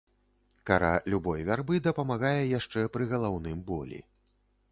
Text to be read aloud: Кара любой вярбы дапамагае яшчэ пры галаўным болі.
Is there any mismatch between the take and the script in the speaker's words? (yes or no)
no